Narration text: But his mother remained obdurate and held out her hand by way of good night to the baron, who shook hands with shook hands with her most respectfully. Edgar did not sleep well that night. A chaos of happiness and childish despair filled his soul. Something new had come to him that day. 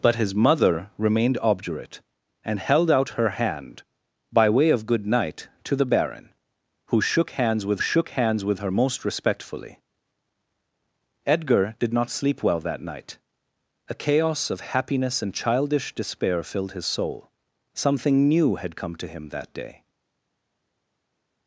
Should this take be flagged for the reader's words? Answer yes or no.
no